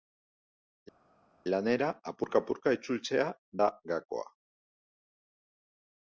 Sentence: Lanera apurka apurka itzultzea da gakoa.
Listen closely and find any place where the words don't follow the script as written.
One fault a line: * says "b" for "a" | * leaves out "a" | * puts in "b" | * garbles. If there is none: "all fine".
all fine